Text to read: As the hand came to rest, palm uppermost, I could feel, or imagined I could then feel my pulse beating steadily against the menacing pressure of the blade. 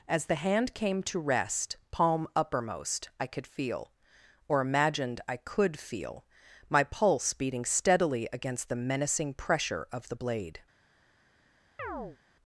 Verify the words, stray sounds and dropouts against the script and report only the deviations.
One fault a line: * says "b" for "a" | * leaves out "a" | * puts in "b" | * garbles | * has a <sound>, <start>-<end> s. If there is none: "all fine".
* leaves out "then"
* has a chirp, 11.8-12.2 s